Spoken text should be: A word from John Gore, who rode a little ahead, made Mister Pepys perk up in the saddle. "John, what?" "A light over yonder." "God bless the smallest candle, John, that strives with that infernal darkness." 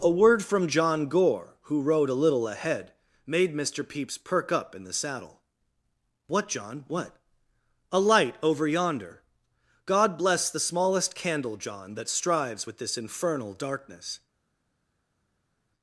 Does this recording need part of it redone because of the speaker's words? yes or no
yes